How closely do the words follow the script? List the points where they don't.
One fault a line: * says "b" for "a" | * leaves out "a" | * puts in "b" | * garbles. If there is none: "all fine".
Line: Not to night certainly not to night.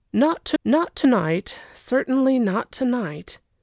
* puts in "not to"